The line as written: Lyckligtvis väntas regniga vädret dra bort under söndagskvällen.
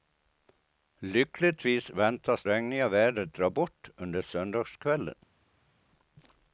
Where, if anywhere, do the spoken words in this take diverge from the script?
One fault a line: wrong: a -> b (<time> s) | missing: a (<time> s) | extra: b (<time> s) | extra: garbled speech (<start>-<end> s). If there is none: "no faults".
no faults